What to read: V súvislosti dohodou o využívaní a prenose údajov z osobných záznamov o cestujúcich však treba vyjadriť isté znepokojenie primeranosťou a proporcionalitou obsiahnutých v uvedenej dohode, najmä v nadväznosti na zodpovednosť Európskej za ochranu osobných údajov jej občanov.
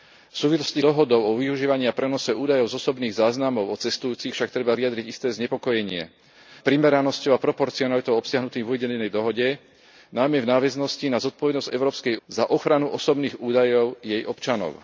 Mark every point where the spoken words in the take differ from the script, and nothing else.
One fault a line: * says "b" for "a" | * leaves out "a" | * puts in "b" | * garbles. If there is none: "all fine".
all fine